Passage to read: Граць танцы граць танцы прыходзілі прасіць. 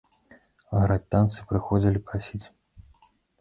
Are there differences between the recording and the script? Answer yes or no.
yes